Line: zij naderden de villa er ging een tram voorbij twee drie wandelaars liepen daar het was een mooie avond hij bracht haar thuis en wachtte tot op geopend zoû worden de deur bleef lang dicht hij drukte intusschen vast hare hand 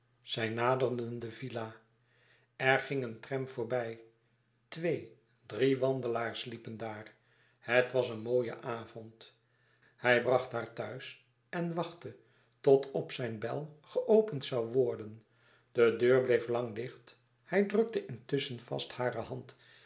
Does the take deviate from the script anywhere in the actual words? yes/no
yes